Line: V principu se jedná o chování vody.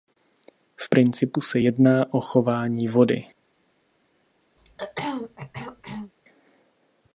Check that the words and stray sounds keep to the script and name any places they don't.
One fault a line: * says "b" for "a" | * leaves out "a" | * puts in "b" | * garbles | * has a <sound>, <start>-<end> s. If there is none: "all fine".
* has a throat clearing, 4.6-6.1 s